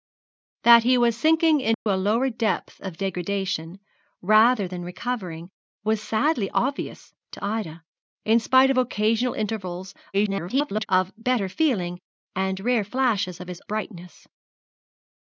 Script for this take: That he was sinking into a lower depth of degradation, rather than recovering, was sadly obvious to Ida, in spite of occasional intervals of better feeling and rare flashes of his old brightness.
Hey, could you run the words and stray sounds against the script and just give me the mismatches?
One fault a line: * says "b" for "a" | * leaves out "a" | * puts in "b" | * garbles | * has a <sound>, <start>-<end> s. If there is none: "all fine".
* has a dropout, 1.7-1.9 s
* garbles
* leaves out "old"